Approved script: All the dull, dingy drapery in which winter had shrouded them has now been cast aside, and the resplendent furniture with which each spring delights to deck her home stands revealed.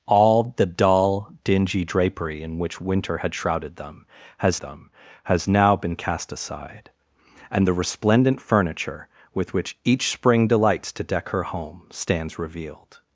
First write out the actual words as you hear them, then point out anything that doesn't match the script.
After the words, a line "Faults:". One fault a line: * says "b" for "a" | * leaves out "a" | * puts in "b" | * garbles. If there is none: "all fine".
All the dull, dingy drapery in which winter had shrouded them has them has now been cast aside, and the resplendent furniture with which each spring delights to deck her home stands revealed.
Faults:
* puts in "them has"